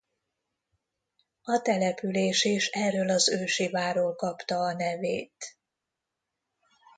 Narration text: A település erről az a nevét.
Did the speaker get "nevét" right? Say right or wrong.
right